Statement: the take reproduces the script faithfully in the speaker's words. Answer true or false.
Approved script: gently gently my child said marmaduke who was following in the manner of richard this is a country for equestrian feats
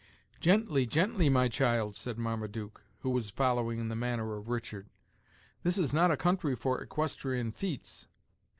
false